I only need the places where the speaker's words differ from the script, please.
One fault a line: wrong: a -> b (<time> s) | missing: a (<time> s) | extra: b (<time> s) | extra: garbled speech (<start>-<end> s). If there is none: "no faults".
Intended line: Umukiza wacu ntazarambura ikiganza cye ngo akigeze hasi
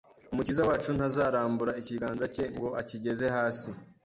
no faults